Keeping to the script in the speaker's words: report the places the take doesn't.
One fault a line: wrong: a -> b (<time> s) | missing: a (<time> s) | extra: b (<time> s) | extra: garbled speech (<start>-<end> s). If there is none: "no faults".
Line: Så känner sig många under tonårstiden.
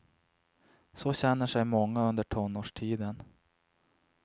no faults